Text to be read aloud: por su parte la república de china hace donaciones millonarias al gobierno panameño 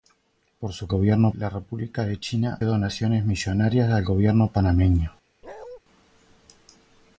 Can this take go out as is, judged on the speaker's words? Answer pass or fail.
fail